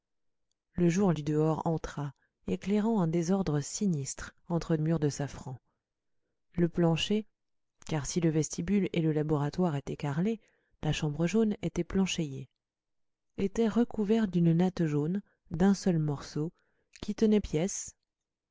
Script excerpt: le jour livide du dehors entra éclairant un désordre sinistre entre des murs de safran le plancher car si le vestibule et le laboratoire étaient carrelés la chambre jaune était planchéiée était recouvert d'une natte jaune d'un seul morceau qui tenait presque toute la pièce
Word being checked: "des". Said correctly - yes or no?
no